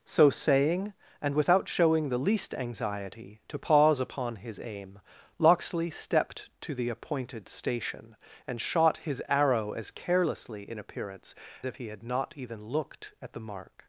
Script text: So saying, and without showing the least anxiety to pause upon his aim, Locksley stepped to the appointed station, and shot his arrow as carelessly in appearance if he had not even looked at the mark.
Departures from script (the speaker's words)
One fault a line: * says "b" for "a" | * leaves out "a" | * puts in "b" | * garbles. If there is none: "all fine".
all fine